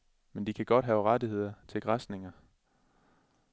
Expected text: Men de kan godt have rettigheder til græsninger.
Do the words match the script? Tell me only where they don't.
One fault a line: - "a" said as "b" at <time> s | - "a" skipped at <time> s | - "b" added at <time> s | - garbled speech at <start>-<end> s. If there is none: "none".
none